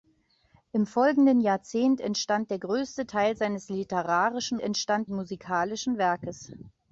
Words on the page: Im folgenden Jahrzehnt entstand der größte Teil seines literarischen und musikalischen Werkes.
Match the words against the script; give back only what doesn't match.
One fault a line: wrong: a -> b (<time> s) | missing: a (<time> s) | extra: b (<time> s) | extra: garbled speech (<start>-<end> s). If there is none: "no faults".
wrong: und -> entstand (4.6 s)